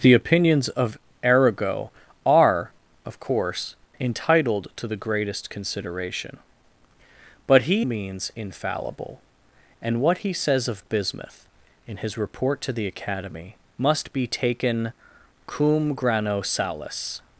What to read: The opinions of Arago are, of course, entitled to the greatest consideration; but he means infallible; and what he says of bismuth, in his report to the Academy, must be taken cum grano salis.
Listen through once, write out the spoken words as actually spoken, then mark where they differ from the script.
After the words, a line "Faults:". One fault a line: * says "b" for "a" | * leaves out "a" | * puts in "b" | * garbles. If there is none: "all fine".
The opinions of Arago are, of course, entitled to the greatest consideration; but he means infallible; and what he says of bismuth, in his report to the Academy, must be taken cum grano salis.
Faults:
all fine